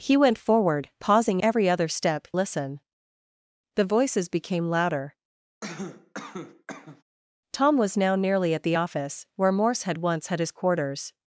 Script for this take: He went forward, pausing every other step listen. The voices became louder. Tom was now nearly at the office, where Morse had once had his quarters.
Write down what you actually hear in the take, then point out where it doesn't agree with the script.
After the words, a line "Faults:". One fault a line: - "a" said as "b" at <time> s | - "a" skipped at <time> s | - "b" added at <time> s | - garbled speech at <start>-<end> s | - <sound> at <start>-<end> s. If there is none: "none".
He went forward, pausing every other step listen. The voices became louder. Tom was now nearly at the office, where Morse had once had his quarters.
Faults:
- cough at 5.6-7.0 s